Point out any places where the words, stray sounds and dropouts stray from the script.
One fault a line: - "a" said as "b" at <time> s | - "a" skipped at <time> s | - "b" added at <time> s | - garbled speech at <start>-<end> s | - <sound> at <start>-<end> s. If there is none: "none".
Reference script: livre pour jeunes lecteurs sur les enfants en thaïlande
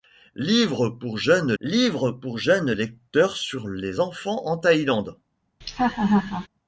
- "livre pour jeunes" added at 1.6 s
- laugh at 5.6-6.5 s